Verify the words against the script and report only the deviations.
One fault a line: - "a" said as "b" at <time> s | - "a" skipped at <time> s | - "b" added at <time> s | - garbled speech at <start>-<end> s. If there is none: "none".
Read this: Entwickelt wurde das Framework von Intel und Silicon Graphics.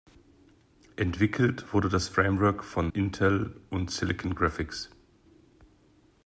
none